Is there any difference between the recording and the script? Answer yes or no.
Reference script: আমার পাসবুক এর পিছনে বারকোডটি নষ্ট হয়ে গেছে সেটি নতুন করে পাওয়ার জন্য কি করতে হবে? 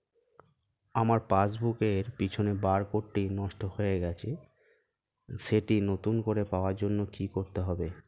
no